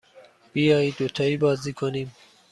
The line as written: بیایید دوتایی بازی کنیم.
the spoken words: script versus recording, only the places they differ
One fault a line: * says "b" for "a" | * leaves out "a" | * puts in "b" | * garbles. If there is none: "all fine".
all fine